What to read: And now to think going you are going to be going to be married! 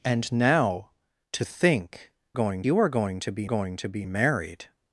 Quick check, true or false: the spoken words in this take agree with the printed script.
true